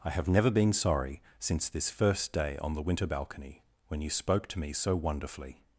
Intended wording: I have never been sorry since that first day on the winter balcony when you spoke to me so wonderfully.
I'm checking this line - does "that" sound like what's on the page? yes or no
no